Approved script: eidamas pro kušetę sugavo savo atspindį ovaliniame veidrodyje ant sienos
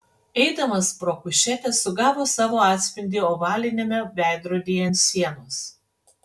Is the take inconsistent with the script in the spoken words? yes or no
no